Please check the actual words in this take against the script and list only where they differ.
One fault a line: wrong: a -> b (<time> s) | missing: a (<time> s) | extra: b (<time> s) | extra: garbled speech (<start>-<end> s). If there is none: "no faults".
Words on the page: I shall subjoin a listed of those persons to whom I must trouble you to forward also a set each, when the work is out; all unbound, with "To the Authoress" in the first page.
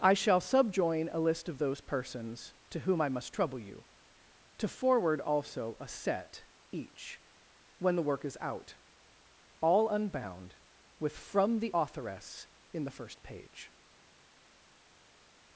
wrong: listed -> list (1.2 s)
wrong: To -> From (11.2 s)